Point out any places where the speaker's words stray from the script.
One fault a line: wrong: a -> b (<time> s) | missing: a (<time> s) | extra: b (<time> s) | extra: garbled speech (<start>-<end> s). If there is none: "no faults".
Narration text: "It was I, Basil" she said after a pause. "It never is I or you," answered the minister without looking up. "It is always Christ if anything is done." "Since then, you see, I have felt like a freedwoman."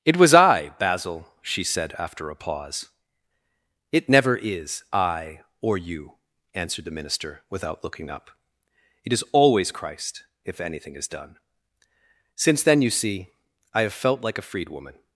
no faults